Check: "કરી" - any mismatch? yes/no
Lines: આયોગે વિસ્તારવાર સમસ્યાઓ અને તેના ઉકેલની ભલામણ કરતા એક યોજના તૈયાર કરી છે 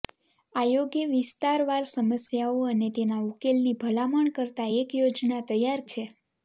yes